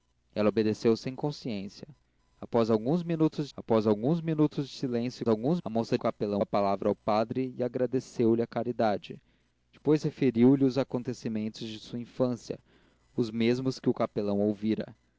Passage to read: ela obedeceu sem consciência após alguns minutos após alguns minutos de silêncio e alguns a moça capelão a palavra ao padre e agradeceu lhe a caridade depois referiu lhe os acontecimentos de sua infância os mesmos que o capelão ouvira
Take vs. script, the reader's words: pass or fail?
pass